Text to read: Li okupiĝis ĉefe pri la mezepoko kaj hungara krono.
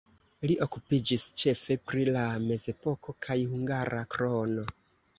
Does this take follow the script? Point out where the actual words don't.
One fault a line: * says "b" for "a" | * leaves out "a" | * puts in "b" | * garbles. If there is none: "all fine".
all fine